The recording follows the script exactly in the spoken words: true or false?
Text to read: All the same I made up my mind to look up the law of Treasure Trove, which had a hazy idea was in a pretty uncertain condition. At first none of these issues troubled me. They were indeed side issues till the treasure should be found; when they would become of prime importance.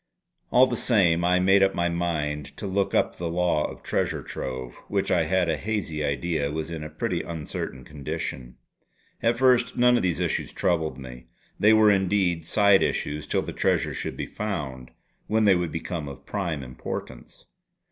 false